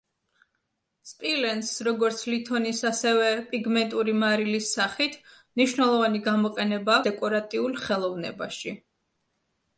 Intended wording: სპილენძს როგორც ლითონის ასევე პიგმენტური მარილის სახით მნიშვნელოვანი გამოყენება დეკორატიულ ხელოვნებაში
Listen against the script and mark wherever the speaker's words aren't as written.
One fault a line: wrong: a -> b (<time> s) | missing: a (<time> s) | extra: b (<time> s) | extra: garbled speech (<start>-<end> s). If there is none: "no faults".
no faults